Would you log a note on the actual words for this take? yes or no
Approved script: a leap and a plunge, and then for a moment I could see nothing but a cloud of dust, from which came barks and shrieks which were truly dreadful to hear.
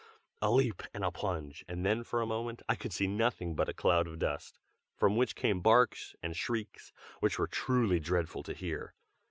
no